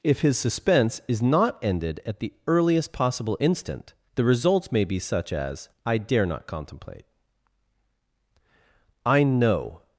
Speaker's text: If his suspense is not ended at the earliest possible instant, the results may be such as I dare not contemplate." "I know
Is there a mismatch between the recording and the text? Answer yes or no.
no